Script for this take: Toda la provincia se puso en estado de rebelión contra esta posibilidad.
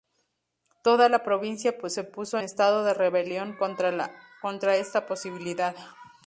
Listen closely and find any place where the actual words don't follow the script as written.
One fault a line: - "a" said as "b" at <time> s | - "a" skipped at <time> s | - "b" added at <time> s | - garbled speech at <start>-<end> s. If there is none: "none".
- "en" skipped at 2.4 s